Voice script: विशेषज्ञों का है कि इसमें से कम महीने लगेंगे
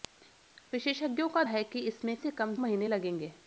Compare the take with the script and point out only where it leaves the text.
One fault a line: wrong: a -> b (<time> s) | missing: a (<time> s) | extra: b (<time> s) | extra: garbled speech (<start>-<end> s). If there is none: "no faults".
no faults